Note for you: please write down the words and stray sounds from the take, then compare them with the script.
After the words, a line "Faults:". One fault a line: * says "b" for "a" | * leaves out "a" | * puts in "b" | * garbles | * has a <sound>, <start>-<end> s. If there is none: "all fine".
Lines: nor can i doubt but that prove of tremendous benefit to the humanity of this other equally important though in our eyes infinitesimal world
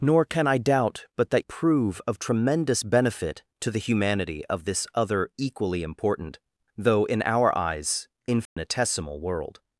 nor can i doubt but that prove of tremendous benefit to the humanity of this other equally important though in our eyes infinitesimal world
Faults:
* has a dropout, 8.5-8.6 s